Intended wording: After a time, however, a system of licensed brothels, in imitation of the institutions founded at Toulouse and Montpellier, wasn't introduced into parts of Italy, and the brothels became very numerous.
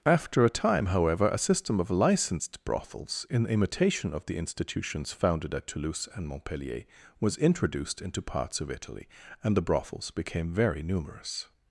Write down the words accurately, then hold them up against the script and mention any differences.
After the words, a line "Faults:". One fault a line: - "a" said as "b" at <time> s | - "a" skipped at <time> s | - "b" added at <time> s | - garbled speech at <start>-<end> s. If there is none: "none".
After a time, however, a system of licensed brothels, in imitation of the institutions founded at Toulouse and Montpellier, was introduced into parts of Italy, and the brothels became very numerous.
Faults:
- "wasn't" said as "was" at 7.2 s